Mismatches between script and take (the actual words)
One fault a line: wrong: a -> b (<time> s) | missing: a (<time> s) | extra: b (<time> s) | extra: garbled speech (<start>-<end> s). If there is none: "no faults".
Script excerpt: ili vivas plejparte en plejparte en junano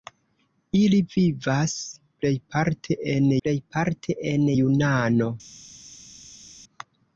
no faults